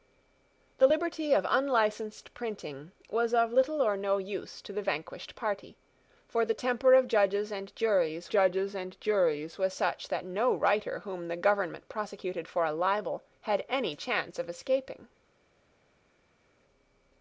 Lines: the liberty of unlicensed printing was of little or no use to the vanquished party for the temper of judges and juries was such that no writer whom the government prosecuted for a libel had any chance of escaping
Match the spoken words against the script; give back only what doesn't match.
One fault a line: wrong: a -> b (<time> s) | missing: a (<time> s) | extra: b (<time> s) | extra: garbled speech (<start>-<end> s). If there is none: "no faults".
extra: judges and juries (8.3 s)